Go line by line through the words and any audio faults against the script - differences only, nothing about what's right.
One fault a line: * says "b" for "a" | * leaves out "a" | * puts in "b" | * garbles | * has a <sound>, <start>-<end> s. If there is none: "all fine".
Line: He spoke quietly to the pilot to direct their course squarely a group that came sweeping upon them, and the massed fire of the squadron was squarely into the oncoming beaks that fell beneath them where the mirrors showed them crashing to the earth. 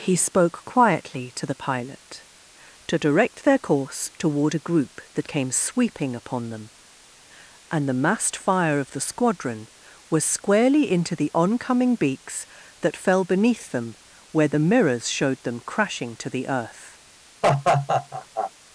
* says "toward" for "squarely"
* has a laugh, 17.4-18.5 s